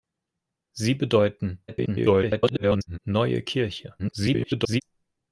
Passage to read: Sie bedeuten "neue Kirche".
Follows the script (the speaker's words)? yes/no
no